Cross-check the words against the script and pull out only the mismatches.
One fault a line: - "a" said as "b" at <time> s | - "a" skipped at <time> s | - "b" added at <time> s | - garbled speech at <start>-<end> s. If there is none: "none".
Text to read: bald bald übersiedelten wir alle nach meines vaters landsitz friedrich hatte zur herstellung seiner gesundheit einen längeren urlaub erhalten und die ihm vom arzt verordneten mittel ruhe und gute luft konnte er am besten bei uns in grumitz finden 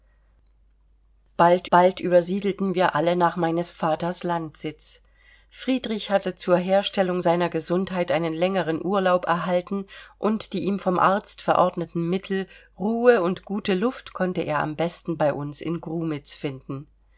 none